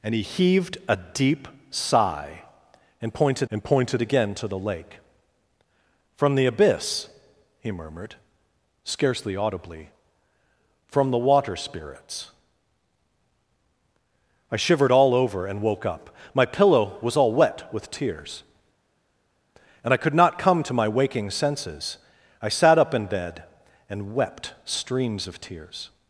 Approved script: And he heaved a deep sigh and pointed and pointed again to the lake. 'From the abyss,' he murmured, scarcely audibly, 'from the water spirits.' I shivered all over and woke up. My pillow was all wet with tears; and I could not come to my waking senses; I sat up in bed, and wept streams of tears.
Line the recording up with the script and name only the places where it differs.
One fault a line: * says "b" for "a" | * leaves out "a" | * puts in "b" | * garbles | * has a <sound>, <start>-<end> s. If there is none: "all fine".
all fine